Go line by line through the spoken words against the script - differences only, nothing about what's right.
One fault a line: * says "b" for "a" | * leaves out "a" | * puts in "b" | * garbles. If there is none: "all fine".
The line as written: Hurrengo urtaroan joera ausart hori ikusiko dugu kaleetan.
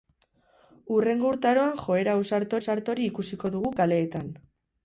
* puts in "ausart"